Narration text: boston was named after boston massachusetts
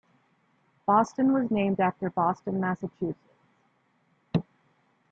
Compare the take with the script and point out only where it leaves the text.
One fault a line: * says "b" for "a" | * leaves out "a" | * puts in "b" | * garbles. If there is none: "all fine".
all fine